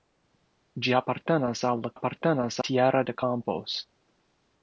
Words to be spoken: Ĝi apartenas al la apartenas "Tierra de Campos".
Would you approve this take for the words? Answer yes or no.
yes